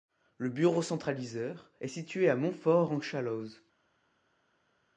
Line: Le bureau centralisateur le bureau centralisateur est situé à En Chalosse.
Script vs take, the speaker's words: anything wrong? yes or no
yes